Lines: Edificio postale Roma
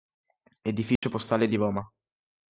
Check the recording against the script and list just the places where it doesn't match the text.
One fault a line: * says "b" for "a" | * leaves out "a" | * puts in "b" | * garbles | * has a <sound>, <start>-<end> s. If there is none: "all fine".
* has a dropout, 1.0-1.0 s
* puts in "di"